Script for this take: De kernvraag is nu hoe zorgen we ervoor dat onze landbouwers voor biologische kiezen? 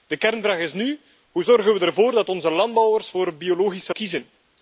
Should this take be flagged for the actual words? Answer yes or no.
no